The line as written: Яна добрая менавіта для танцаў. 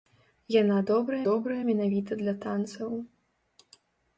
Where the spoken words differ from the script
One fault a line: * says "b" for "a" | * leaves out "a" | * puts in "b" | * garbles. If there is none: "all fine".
* puts in "добрая"